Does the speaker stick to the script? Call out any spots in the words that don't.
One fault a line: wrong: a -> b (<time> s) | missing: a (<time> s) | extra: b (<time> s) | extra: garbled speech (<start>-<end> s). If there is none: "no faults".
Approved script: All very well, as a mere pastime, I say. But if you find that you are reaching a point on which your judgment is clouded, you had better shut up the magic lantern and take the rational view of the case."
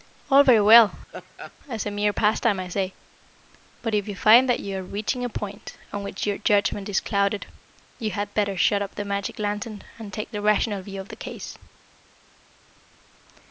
no faults